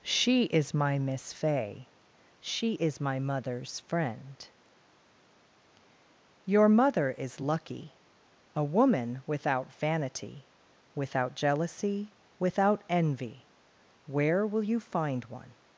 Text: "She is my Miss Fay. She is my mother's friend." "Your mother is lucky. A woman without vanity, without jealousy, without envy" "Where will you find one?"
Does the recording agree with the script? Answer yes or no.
yes